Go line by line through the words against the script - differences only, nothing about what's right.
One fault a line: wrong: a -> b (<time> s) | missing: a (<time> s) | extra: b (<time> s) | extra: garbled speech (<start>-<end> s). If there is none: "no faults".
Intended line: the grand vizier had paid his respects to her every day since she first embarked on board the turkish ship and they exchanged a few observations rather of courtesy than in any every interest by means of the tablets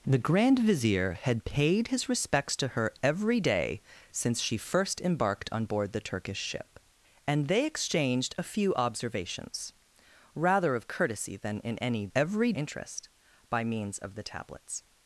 no faults